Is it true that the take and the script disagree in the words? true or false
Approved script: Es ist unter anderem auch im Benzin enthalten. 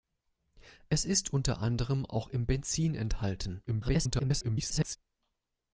true